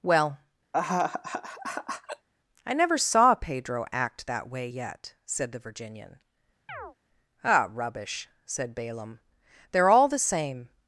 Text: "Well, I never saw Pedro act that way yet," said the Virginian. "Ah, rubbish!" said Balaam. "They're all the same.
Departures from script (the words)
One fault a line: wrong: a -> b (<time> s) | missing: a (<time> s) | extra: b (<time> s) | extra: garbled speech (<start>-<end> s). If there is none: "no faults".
no faults